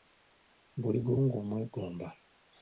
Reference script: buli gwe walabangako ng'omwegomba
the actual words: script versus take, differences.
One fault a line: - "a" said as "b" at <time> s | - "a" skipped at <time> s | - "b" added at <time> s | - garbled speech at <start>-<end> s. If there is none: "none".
- "walabangako" skipped at 1.1 s